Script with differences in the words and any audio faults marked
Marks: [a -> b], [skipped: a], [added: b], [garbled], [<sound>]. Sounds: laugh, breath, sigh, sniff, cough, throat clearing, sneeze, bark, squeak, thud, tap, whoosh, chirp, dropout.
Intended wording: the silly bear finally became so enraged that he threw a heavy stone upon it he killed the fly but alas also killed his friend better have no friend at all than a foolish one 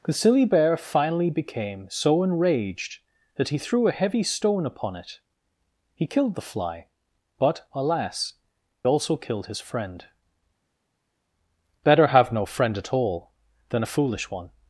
the silly bear finally became so enraged that he threw a heavy stone upon it he killed the fly but alas also killed his friend better have no friend at all than a foolish one